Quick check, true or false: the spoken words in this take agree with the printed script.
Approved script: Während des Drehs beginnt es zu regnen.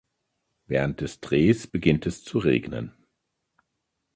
true